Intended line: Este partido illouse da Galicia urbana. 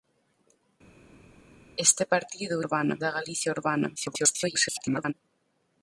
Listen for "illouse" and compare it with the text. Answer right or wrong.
wrong